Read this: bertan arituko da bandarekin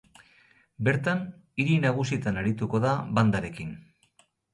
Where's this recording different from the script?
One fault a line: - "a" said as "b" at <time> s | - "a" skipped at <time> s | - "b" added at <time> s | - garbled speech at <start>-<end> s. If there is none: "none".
- "hiri nagusietan" added at 1.6 s